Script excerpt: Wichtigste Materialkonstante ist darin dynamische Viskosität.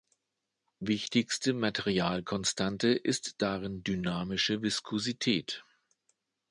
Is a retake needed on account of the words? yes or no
no